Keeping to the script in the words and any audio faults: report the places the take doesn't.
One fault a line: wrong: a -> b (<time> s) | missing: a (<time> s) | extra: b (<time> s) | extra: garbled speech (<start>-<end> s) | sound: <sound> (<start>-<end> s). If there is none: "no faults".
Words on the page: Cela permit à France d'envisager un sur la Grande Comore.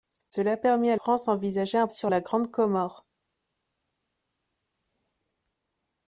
no faults